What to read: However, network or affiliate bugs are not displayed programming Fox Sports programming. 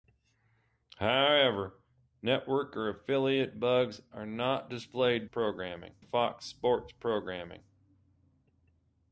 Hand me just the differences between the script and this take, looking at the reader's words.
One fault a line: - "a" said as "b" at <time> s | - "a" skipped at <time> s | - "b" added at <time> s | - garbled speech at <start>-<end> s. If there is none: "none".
none